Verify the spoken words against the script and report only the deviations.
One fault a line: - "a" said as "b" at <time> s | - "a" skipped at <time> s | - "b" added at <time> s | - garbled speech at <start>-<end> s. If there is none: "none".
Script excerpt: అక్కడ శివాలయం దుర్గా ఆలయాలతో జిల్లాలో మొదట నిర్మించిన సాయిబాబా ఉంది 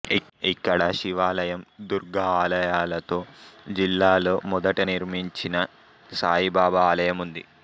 - "అక్కడ" said as "ఇక్కడ" at 0.5 s
- "ఆలయం" added at 6.9 s